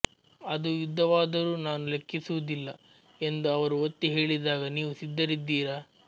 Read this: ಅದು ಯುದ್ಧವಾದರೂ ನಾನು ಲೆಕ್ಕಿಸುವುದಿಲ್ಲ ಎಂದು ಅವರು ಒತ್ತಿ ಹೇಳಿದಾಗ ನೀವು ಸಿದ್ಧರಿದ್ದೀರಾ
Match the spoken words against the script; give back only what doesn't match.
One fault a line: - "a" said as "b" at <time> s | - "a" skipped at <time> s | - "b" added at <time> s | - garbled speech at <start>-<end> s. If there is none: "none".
none